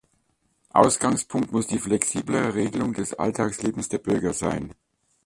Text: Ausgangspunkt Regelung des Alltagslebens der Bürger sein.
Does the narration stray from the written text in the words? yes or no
yes